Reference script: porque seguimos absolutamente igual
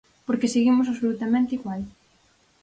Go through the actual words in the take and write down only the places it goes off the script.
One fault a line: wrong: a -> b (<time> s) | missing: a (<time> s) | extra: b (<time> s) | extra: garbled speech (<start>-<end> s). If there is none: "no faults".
no faults